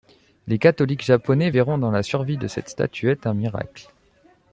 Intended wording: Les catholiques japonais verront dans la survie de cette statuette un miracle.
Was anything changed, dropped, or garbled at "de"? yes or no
no